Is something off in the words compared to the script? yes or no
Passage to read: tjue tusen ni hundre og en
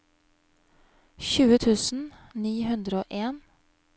no